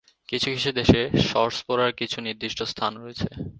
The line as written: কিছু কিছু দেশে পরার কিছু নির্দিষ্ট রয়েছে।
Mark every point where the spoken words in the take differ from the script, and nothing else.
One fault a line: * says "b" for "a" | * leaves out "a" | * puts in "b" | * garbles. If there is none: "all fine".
* puts in "শর্টস"
* puts in "স্থান"